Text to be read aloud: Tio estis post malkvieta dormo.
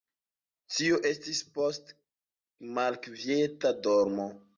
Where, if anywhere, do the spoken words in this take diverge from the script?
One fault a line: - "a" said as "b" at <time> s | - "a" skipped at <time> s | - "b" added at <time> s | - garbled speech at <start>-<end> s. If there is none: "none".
none